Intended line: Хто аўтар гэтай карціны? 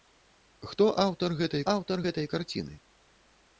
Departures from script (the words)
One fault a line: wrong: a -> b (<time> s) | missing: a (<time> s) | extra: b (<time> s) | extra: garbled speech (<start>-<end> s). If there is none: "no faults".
extra: аўтар гэтай (1.7 s)